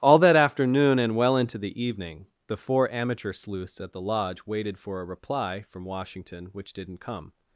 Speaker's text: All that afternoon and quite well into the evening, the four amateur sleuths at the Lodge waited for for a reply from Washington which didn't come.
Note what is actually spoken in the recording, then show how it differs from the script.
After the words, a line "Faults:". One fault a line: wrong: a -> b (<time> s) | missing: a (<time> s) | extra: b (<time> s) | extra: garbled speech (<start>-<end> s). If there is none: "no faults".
All that afternoon and well into the evening, the four amateur sleuths at the Lodge waited for a reply from Washington which didn't come.
Faults:
missing: quite (1.1 s)
missing: for (5.0 s)